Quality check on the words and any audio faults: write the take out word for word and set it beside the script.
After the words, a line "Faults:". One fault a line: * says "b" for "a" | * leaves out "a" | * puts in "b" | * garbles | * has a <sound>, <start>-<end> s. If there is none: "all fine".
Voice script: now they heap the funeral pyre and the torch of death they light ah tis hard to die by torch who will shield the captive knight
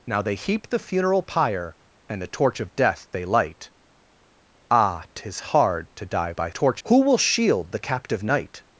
now they heap the funeral pyre and the torch of death they light ah tis hard to die by torch who will shield the captive knight
Faults:
all fine